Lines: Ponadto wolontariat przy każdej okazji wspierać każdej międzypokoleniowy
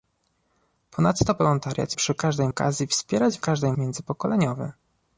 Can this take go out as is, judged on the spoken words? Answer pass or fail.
pass